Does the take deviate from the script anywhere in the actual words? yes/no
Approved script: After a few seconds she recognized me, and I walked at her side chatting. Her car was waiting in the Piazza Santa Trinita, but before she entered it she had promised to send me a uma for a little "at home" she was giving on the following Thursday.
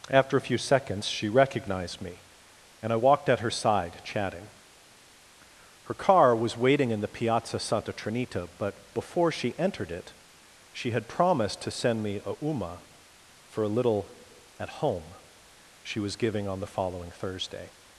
no